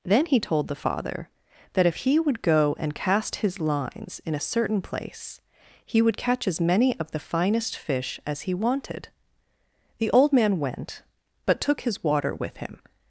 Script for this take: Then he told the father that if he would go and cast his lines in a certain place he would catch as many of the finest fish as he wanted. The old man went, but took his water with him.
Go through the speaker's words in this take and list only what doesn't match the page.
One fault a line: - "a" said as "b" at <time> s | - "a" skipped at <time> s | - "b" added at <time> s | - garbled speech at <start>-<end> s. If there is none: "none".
none